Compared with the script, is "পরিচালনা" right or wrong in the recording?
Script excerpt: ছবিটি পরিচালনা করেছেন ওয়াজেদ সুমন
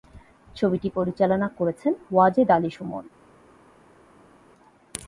right